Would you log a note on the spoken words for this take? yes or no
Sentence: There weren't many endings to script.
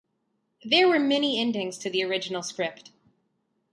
yes